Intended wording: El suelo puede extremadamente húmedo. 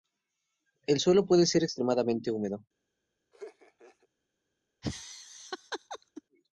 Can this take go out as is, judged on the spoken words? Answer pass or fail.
fail